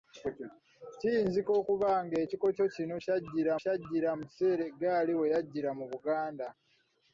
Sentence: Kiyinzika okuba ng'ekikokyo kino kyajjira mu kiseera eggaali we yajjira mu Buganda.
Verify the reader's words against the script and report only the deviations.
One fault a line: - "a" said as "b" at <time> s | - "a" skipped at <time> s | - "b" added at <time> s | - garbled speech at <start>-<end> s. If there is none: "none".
- "kyajjira" added at 3.6 s